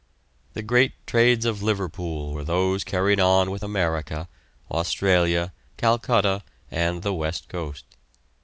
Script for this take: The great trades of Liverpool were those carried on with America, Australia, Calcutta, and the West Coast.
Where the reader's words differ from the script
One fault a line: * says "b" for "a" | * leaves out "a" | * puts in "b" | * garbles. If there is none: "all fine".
all fine